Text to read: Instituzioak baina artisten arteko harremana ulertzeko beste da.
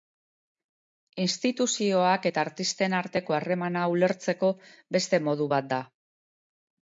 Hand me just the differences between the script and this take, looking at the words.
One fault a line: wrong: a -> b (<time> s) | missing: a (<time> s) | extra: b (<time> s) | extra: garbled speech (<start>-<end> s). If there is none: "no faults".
wrong: baina -> eta (2.3 s)
extra: modu bat (5.3 s)